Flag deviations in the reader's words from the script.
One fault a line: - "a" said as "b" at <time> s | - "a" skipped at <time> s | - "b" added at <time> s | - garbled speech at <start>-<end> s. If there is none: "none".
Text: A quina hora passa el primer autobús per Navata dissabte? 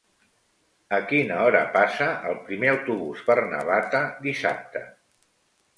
none